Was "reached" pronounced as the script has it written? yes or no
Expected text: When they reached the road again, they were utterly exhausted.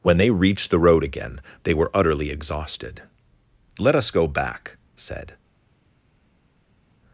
yes